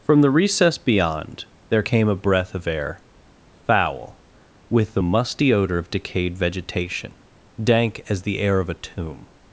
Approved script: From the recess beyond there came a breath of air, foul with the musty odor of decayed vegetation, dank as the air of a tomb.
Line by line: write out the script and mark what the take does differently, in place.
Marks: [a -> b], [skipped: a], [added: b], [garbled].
From the recess beyond there came a breath of air, foul with the musty odor of decayed vegetation, dank as the air of a tomb.